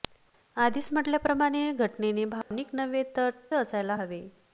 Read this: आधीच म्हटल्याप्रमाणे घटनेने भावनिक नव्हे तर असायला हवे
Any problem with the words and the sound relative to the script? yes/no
yes